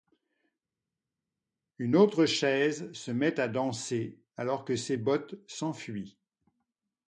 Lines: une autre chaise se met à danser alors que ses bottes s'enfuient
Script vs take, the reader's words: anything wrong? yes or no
no